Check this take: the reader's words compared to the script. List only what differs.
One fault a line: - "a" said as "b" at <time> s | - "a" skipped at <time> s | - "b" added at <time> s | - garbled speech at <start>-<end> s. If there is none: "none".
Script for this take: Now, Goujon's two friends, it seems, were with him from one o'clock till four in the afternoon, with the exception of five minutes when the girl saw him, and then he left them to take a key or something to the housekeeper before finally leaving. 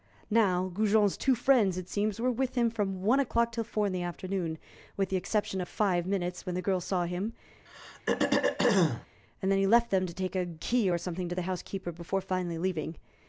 none